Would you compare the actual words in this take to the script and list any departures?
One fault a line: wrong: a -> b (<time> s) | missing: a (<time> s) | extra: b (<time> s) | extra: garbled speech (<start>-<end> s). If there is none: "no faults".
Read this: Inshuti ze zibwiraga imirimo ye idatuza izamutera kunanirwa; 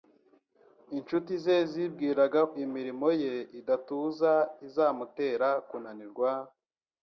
no faults